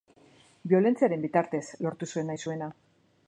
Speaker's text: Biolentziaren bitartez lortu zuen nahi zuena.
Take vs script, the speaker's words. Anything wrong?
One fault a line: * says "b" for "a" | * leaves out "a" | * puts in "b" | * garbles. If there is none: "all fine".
all fine